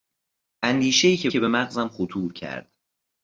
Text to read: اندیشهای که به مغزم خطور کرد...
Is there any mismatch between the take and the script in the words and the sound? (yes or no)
yes